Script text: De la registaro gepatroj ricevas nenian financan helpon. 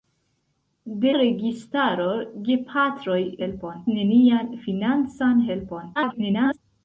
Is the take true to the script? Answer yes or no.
no